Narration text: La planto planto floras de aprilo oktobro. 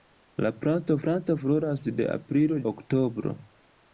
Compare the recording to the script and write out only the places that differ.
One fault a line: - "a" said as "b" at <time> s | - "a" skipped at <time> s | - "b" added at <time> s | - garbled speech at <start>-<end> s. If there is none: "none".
none